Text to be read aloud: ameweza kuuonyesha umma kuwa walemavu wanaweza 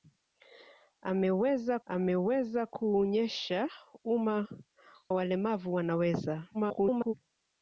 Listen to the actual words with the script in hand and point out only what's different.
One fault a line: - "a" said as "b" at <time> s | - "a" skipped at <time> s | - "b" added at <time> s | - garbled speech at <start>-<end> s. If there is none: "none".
- "ameweza" added at 1.9 s
- "kuwa" skipped at 4.5 s
- garbled speech at 6.5-7.1 s